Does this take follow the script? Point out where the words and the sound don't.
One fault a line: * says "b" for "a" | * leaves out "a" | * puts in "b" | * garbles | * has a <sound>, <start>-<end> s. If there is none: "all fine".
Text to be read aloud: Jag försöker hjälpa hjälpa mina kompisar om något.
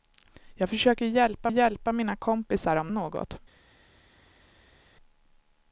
all fine